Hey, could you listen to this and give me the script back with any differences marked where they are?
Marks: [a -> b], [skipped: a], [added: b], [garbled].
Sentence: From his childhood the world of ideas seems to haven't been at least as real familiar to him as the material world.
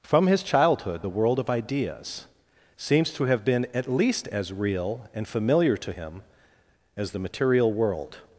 From his childhood the world of ideas seems to [haven't -> have] been at least as real [added: and] familiar to him as the material world.